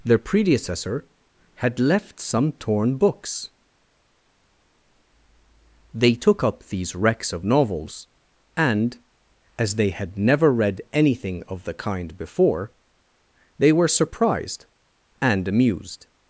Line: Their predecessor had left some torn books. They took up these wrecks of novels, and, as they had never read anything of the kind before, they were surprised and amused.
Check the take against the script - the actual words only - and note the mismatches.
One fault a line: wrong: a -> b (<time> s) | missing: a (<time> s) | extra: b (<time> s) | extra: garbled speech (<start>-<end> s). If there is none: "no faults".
no faults